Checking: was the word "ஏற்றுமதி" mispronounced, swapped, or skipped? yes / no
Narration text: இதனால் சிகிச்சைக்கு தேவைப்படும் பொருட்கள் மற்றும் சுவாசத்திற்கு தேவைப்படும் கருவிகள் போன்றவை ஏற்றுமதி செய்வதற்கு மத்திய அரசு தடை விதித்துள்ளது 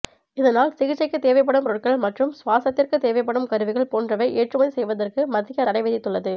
no